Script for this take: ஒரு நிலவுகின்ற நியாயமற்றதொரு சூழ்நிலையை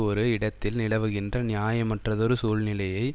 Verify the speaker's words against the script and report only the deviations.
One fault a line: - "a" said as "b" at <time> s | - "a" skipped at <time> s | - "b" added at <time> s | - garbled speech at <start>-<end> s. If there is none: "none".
- "இடத்தில்" added at 0.3 s